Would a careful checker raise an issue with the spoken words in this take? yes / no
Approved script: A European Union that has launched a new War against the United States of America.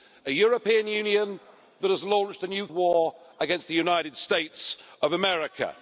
no